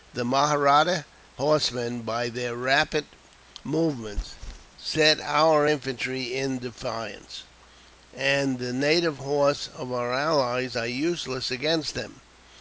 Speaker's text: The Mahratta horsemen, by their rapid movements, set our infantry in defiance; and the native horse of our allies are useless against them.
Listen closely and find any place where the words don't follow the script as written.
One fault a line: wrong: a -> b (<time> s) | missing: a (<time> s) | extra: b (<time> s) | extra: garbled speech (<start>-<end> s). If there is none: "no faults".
no faults